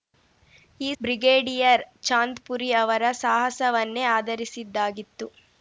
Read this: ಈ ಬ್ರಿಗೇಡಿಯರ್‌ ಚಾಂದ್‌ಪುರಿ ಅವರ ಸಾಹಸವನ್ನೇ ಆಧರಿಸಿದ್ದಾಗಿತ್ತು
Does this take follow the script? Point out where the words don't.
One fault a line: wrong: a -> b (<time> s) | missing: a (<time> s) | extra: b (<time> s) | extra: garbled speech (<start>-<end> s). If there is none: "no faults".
no faults